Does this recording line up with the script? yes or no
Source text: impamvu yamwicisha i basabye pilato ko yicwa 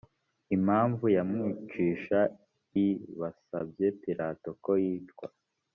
yes